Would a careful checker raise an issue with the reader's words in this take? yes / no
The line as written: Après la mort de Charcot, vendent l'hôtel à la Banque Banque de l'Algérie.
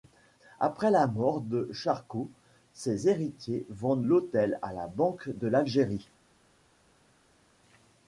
yes